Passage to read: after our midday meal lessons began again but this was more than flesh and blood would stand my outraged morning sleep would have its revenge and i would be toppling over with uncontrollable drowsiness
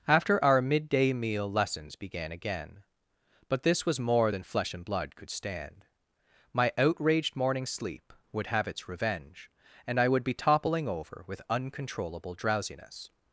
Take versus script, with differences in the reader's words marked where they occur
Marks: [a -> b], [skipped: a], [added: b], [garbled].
after our midday meal lessons began again but this was more than flesh and blood [would -> could] stand my outraged morning sleep would have its revenge and i would be toppling over with uncontrollable drowsiness